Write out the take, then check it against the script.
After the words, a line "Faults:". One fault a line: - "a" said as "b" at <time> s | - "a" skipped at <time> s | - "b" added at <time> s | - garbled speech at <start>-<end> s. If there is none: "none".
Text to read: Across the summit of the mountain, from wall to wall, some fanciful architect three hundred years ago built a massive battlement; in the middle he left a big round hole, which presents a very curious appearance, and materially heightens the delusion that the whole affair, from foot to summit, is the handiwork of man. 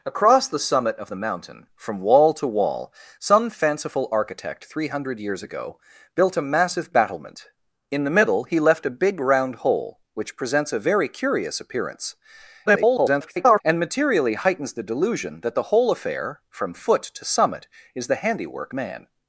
Across the summit of the mountain, from wall to wall, some fanciful architect three hundred years ago built a massive battlement; in the middle he left a big round hole, which presents a very curious appearance, [garbled] and materially heightens the delusion that the whole affair, from foot to summit, is the handiwork man.
Faults:
- garbled speech at 12.7-13.6 s
- "of" skipped at 18.7 s